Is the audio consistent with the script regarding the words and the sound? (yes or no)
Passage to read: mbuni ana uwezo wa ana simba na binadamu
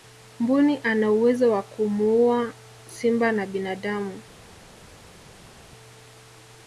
no